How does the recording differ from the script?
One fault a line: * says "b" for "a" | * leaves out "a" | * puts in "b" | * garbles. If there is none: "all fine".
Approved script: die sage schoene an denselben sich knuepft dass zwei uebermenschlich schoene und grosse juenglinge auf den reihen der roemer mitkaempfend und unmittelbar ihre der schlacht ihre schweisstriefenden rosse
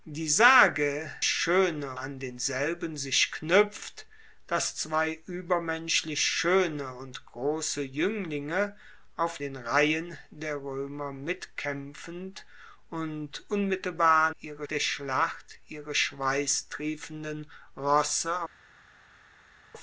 all fine